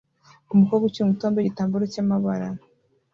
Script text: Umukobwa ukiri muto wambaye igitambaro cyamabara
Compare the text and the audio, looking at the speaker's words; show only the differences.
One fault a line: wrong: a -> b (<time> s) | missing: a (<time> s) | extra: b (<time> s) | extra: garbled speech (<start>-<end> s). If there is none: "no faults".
no faults